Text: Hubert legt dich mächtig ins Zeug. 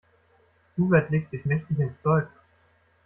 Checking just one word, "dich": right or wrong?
wrong